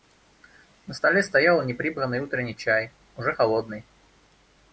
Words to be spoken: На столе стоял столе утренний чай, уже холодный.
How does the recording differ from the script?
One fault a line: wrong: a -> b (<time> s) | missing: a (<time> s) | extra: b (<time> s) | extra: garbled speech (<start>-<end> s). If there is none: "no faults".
wrong: столе -> неприбранный (1.6 s)